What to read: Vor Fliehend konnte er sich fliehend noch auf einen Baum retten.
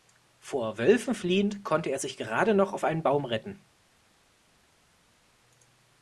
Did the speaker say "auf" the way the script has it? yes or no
yes